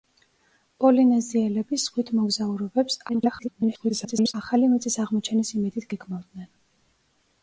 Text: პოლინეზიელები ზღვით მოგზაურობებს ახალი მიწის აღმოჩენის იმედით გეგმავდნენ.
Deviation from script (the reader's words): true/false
true